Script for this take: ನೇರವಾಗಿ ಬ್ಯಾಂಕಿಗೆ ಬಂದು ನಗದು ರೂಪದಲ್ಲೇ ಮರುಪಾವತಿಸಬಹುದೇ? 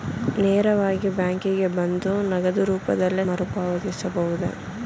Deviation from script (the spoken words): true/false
false